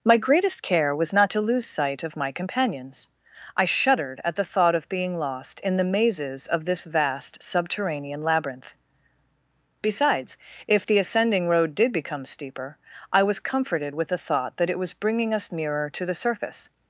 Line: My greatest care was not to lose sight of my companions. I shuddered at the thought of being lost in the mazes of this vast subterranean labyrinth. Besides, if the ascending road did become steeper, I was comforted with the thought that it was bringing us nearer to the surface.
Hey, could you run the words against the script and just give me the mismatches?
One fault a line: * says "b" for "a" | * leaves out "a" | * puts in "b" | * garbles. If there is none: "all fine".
all fine